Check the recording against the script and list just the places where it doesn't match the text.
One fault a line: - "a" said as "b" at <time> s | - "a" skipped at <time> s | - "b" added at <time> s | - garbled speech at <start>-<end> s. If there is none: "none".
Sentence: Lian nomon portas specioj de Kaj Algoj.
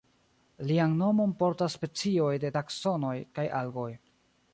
- "Taksonoj" added at 2.6 s